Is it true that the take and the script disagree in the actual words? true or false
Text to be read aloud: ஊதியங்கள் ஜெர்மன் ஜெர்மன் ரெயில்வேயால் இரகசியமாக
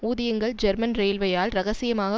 true